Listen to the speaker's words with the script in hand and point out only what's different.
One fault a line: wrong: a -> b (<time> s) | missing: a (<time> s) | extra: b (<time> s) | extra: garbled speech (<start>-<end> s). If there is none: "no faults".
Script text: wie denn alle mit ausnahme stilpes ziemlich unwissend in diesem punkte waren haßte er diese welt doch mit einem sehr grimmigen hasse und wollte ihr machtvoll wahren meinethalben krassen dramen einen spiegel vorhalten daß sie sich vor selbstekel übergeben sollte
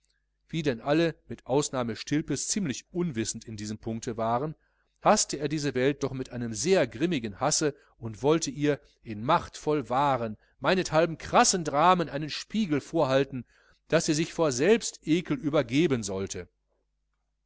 extra: in (9.0 s)